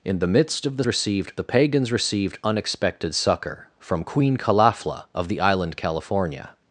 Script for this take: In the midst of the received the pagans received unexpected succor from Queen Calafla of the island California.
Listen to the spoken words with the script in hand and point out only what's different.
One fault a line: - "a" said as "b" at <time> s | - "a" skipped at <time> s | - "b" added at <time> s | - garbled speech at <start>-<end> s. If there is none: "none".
none